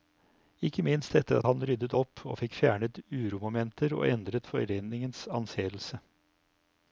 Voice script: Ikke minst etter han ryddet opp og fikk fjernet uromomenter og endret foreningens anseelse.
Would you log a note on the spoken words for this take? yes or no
no